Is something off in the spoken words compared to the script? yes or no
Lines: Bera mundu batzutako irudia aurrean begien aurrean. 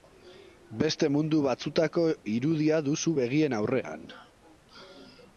yes